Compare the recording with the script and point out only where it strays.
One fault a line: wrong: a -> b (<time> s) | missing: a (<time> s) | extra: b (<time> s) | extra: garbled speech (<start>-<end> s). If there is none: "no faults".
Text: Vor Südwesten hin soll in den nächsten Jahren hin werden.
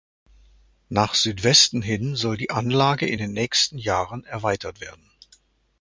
wrong: Vor -> Nach (0.9 s)
extra: die Anlage (2.4 s)
wrong: hin -> erweitert (4.2 s)